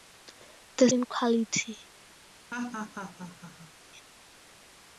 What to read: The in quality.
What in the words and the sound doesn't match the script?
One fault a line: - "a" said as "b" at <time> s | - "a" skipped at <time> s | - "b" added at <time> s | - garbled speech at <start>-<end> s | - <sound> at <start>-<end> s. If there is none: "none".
- laugh at 2.5-3.7 s